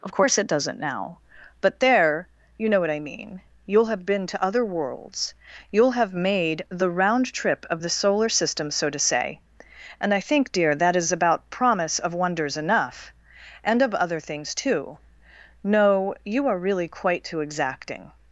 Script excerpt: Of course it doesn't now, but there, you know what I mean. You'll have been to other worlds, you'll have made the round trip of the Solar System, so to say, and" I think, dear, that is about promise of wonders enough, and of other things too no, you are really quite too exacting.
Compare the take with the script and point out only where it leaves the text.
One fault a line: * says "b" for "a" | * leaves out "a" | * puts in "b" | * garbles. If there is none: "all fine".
all fine